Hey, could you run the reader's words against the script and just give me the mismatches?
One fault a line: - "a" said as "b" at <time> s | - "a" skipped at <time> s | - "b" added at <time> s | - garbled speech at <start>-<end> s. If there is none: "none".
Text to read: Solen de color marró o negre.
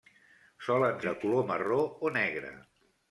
none